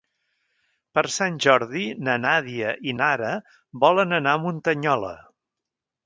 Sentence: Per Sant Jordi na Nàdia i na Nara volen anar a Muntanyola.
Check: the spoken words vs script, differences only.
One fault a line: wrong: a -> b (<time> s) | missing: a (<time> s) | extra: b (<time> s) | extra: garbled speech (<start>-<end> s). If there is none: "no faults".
missing: na (3.0 s)